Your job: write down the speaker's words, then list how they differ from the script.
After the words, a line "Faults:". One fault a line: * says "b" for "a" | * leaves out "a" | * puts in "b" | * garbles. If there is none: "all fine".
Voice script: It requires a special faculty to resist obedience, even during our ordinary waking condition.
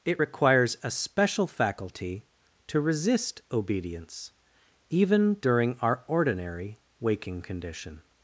It requires a special faculty to resist obedience, even during our ordinary waking condition.
Faults:
all fine